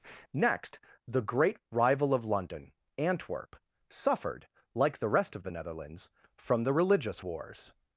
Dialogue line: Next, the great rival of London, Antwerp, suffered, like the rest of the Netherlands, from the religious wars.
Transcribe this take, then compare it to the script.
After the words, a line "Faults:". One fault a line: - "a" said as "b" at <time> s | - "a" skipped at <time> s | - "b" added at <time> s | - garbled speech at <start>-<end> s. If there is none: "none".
Next, the great rival of London, Antwerp, suffered, like the rest of the Netherlands, from the religious wars.
Faults:
none